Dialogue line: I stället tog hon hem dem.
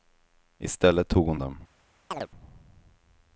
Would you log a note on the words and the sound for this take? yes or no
yes